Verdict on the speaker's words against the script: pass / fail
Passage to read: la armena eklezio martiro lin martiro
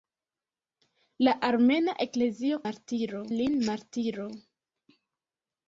pass